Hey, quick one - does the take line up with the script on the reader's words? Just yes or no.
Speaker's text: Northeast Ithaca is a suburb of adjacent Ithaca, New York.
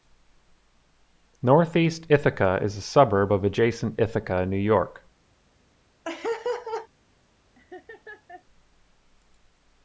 yes